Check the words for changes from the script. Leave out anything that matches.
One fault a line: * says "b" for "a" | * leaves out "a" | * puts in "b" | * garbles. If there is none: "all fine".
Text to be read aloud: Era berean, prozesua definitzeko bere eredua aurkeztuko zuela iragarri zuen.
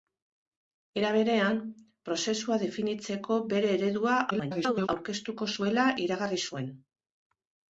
* garbles